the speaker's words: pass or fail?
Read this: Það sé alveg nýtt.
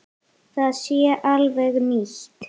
pass